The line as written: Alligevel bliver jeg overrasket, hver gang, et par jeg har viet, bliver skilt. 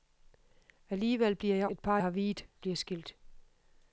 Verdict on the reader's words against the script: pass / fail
fail